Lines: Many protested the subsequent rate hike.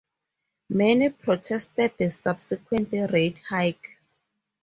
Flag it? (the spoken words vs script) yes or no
no